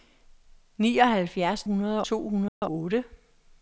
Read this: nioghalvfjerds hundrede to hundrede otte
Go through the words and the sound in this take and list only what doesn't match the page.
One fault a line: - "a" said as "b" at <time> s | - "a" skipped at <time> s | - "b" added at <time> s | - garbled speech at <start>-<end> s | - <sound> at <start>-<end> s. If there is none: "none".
- dropout at 2.5-2.6 s